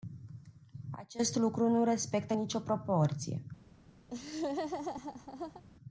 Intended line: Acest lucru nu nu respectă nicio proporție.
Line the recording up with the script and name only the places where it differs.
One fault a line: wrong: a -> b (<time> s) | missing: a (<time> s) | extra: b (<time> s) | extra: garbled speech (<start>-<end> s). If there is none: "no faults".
missing: nu (1.8 s)